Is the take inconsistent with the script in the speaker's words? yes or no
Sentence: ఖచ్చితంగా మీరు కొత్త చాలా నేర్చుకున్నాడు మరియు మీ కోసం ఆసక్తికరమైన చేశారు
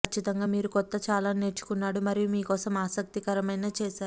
no